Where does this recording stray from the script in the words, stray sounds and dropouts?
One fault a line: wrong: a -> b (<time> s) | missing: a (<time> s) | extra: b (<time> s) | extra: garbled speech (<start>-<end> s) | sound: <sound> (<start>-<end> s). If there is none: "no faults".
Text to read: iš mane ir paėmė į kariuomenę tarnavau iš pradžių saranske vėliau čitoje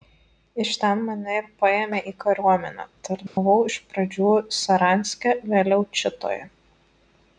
extra: ten (0.8 s)
sound: dropout (3.3-3.4 s)